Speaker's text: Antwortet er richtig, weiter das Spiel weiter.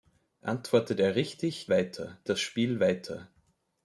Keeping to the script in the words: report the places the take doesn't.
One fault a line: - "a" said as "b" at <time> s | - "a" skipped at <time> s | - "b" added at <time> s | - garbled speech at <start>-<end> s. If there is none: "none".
none